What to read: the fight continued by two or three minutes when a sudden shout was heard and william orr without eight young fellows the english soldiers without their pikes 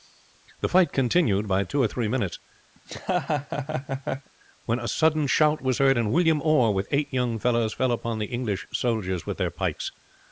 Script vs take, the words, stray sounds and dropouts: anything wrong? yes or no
yes